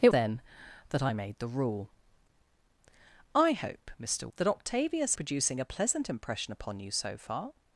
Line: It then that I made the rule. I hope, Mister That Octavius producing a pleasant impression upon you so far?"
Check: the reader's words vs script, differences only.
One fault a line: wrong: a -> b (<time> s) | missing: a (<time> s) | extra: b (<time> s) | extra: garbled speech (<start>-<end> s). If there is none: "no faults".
no faults